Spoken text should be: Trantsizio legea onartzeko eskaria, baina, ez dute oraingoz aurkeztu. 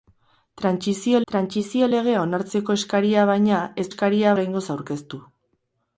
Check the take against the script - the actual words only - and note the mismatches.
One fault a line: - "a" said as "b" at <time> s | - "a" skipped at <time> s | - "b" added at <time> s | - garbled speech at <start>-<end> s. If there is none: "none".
- "trantsizio" added at 1.3 s
- "dute" said as "eskaria" at 3.9 s